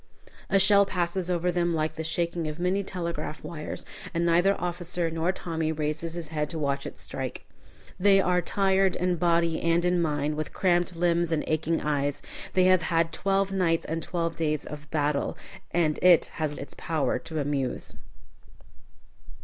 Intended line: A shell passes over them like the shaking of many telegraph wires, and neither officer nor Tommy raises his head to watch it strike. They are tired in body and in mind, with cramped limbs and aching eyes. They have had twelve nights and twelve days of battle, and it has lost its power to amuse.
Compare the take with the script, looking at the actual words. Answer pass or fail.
fail